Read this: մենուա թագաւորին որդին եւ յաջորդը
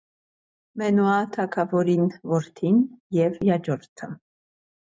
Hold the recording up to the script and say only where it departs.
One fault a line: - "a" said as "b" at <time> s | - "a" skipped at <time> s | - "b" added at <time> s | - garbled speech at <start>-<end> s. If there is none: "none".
none